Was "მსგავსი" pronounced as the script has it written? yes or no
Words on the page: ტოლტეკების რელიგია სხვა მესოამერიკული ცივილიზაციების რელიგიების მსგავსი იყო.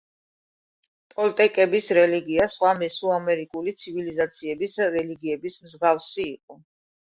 yes